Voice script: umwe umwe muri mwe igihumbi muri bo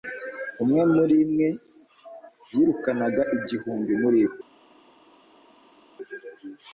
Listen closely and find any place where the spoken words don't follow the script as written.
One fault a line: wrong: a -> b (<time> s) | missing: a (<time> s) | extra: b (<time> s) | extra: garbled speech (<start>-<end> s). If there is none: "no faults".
missing: umwe (0.8 s)
extra: yirukanaga (2.5 s)